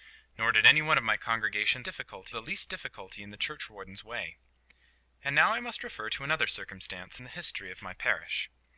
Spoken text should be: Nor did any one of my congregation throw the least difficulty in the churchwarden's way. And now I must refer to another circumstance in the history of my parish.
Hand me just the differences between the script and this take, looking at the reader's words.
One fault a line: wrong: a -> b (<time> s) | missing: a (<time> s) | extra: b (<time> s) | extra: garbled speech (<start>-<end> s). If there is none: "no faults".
wrong: throw -> difficulty (1.8 s)